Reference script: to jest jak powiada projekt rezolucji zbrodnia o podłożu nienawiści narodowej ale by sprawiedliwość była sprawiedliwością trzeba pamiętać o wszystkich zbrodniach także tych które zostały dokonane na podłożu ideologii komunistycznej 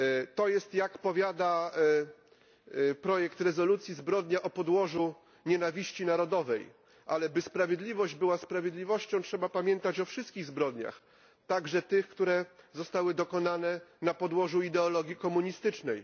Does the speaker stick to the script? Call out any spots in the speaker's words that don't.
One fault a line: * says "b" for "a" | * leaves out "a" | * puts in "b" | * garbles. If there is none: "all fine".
all fine